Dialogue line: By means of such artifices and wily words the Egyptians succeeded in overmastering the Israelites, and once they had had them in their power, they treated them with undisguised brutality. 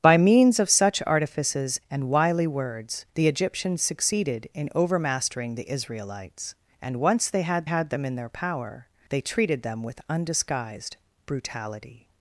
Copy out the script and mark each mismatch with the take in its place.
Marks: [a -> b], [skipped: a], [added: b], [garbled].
By means of such artifices and wily words the Egyptians succeeded in overmastering the Israelites, and once they had had them in their power, they treated them with undisguised brutality.